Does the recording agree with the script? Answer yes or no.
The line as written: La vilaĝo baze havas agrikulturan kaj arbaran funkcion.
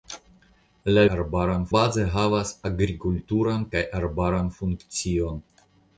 no